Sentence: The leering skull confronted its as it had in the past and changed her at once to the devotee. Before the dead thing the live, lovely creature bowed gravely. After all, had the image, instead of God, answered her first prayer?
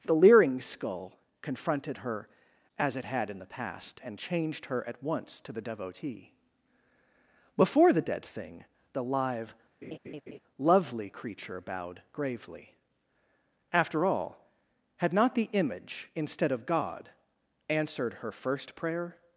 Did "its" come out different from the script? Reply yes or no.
yes